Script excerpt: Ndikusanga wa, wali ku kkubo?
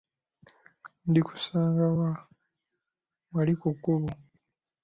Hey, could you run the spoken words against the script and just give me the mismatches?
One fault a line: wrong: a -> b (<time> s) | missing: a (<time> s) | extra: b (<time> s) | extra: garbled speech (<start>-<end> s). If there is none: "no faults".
no faults